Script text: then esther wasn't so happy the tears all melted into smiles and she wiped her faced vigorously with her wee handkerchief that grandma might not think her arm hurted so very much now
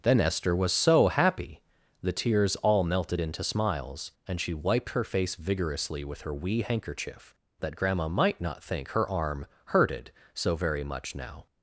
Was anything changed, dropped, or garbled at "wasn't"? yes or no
yes